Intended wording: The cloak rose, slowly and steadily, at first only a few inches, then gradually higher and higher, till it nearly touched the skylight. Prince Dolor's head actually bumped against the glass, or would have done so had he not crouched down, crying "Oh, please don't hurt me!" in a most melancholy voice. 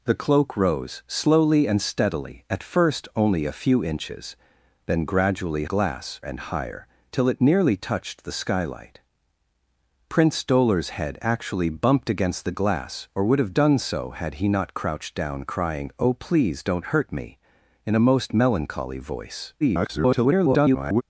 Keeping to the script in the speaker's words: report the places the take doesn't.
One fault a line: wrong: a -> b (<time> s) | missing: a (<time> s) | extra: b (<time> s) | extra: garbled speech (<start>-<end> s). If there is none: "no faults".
wrong: higher -> glass (5.6 s)
extra: garbled speech (19.6-21.0 s)